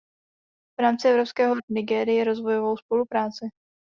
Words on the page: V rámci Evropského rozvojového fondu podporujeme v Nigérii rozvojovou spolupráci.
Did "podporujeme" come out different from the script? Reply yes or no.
yes